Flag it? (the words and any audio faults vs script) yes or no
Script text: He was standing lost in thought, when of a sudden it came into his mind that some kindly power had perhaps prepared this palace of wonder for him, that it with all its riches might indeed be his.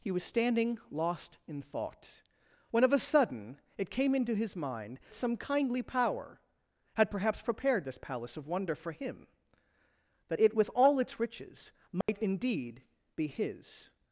yes